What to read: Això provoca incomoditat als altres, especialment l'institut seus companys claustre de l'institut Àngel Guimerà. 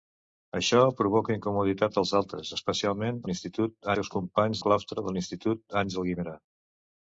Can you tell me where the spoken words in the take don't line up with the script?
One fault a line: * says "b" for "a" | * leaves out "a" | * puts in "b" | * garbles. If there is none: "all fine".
all fine